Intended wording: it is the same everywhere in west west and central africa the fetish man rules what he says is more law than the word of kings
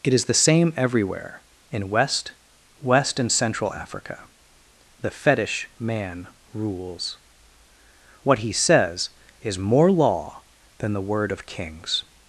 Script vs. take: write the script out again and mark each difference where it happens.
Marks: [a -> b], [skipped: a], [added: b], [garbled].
it is the same everywhere in west west and central africa the fetish man rules what he says is more law than the word of kings